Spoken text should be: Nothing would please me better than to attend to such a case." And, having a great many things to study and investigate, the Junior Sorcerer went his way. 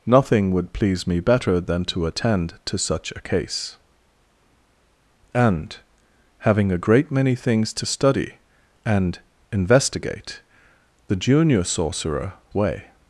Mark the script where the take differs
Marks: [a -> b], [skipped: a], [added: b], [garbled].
Nothing would please me better than to attend to such a case." And, having a great many things to study and investigate, the Junior Sorcerer [skipped: went his] way.